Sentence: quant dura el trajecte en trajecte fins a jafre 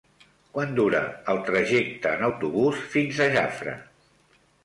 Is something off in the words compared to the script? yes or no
yes